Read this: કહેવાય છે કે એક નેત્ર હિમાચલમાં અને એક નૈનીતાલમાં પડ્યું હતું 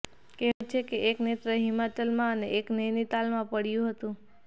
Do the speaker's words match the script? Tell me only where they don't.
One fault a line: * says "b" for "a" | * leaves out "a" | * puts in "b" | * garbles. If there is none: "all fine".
all fine